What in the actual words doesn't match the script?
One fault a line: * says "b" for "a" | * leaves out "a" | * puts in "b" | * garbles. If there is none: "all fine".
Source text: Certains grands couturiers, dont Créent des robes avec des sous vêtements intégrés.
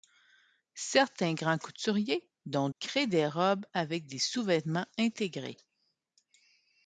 all fine